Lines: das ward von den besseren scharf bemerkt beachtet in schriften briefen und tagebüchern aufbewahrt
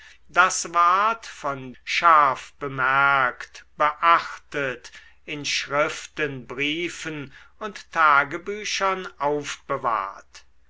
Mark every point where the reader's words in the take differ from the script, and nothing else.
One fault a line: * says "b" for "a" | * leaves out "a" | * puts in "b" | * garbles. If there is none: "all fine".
* leaves out "den besseren"